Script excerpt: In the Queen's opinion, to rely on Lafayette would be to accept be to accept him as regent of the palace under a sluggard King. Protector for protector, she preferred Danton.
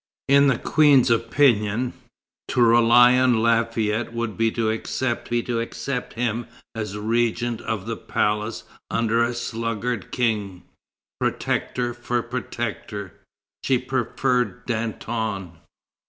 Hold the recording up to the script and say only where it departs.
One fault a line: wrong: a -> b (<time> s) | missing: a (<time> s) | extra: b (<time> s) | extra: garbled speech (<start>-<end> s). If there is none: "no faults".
no faults